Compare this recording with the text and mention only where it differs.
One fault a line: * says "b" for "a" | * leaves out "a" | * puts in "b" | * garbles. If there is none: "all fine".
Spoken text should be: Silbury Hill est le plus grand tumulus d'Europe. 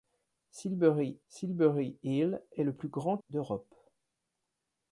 * puts in "silbury"
* leaves out "tumulus"